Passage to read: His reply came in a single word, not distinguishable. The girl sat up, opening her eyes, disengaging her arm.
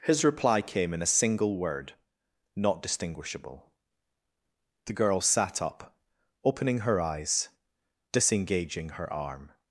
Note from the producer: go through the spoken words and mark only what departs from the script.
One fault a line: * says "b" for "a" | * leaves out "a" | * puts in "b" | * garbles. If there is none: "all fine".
all fine